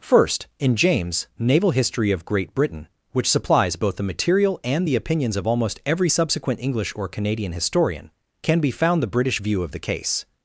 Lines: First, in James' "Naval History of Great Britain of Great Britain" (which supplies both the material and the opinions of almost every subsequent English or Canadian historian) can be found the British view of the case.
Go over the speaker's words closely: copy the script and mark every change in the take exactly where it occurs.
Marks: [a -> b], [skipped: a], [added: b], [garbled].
First, in James' "Naval History of Great Britain [skipped: of Great Britain"] (which supplies both the material and the opinions of almost every subsequent English or Canadian historian) can be found the British view of the case.